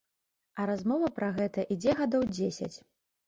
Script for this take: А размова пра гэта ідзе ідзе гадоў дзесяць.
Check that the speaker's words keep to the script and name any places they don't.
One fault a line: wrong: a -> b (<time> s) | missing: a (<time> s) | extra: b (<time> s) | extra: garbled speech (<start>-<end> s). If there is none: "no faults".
missing: ідзе (1.9 s)